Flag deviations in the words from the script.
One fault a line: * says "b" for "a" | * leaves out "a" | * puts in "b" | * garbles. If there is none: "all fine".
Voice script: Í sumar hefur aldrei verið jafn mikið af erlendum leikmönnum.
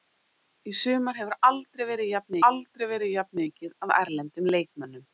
* puts in "aldrei verið jafn"